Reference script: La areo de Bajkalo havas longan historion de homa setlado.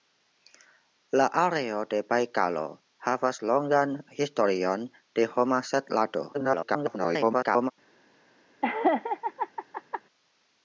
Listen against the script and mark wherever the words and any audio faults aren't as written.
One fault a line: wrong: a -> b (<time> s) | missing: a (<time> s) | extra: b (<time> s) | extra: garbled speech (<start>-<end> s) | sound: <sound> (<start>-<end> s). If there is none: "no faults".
extra: garbled speech (6.3-7.7 s)
sound: laugh (8.6-10.0 s)